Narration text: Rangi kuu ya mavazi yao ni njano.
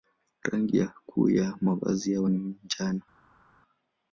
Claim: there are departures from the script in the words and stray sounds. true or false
false